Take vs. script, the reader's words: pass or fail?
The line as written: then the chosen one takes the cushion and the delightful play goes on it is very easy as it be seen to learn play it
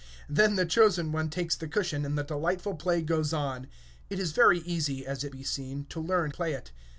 pass